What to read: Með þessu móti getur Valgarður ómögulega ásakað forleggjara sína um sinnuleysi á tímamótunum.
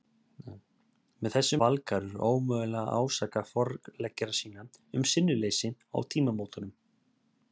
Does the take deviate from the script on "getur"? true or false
true